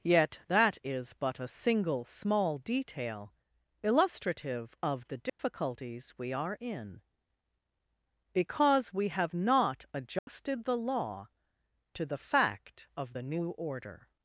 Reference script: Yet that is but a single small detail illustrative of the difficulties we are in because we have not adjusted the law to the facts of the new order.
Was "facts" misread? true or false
true